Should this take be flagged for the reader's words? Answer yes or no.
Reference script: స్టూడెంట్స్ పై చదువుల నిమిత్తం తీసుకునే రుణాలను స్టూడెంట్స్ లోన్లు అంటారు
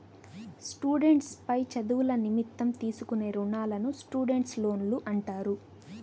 no